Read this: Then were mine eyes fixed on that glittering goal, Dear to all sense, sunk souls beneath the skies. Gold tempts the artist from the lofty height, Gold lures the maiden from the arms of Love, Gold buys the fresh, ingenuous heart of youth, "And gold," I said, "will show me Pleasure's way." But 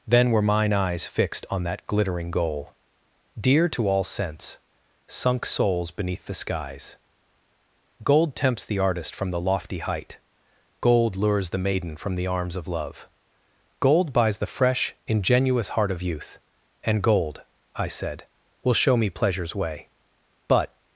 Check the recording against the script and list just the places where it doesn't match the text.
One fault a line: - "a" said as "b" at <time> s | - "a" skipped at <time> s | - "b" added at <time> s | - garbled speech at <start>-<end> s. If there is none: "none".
none